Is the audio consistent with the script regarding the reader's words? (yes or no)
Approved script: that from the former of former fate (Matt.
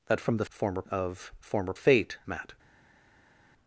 yes